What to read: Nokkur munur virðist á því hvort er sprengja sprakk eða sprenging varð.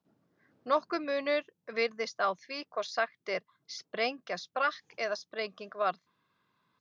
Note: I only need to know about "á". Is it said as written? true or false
true